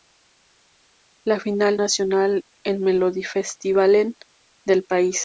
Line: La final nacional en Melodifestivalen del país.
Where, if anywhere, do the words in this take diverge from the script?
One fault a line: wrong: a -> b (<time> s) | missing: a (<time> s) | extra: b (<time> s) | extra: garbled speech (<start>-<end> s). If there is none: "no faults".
no faults